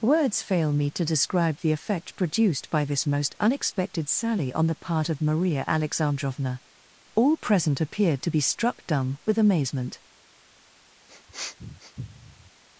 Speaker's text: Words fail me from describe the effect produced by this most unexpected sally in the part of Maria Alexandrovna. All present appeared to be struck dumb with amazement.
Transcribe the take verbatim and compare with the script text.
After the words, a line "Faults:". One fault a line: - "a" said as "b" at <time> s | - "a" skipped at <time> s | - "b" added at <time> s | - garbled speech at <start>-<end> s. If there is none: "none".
Words fail me to describe the effect produced by this most unexpected sally on the part of Maria Alexandrovna. All present appeared to be struck dumb with amazement.
Faults:
- "from" said as "to" at 0.9 s
- "in" said as "on" at 4.5 s